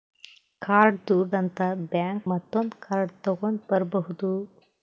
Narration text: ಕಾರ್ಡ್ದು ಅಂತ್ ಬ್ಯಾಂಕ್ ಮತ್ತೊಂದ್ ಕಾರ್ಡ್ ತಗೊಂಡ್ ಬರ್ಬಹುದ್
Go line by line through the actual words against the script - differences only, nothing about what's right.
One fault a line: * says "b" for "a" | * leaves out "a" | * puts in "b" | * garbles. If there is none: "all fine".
all fine